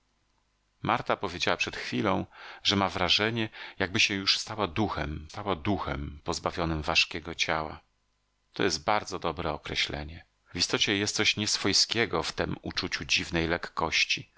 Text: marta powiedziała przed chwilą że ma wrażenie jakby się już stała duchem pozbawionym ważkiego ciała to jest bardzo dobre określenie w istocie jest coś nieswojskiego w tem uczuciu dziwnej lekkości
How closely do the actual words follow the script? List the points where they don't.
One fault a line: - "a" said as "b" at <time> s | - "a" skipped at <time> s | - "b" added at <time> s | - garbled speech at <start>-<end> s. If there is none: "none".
- "stała duchem" added at 5.3 s